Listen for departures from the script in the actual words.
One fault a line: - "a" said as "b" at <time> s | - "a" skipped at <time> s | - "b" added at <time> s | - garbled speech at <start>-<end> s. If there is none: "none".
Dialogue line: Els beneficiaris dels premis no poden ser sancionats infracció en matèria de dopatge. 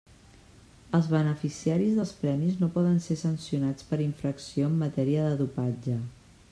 - "per" added at 3.9 s